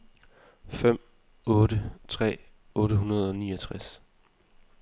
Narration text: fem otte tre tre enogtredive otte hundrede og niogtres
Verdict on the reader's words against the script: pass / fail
fail